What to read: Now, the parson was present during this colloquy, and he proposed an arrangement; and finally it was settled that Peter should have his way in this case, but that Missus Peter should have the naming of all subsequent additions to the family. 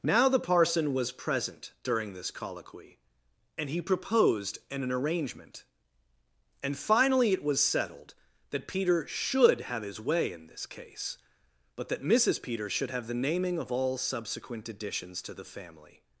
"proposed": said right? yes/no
yes